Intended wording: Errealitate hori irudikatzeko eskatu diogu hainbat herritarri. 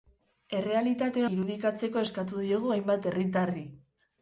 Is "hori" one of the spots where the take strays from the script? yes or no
yes